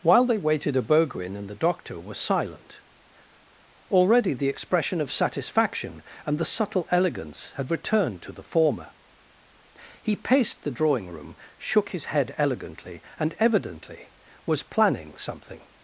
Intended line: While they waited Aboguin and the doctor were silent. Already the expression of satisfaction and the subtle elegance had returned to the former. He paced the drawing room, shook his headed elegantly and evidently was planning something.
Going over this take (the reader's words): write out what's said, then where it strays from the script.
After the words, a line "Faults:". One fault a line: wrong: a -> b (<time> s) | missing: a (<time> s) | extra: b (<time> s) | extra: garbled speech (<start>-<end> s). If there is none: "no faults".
While they waited Aboguin and the doctor were silent. Already the expression of satisfaction and the subtle elegance had returned to the former. He paced the drawing room, shook his head elegantly and evidently was planning something.
Faults:
wrong: headed -> head (12.1 s)